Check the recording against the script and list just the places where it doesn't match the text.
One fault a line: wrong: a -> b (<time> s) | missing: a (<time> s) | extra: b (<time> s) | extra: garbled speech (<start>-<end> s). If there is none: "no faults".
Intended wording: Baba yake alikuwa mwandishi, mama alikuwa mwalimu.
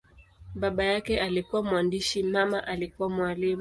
no faults